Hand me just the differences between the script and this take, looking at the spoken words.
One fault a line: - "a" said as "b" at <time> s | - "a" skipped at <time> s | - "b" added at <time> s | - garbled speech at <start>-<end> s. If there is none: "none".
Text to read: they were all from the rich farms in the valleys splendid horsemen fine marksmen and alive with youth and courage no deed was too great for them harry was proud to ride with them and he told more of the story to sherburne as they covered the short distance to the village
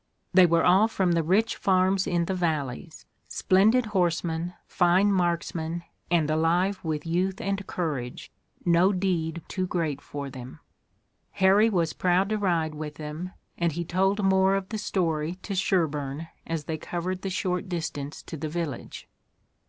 - "was" skipped at 9.4 s